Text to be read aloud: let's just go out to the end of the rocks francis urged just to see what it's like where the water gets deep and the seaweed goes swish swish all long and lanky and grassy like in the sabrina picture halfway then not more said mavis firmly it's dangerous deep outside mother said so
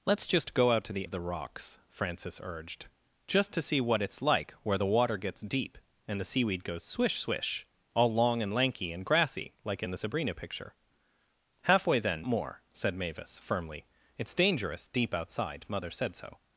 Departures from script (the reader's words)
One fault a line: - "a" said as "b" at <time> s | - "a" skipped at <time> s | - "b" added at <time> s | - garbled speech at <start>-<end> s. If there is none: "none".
- "end" skipped at 1.1 s
- "not" skipped at 12.3 s